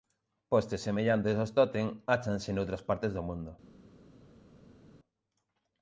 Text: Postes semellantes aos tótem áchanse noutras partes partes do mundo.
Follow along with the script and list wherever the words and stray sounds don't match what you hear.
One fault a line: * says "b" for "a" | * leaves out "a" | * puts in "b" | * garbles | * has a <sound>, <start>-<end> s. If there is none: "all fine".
* leaves out "partes"